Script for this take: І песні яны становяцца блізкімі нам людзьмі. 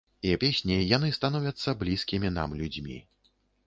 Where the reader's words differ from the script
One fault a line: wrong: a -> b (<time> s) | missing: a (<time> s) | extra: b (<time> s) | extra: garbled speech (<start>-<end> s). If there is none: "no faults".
no faults